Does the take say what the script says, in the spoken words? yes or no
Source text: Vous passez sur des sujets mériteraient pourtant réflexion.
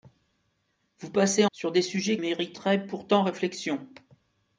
yes